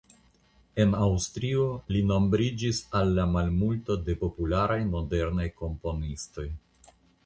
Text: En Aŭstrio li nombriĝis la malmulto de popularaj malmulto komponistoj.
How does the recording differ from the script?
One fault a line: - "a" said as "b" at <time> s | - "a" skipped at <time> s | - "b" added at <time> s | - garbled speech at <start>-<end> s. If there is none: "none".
- "al" added at 3.0 s
- "malmulto" said as "modernaj" at 5.0 s